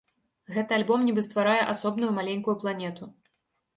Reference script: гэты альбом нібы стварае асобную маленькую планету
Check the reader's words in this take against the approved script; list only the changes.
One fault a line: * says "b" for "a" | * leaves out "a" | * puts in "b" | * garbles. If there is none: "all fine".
all fine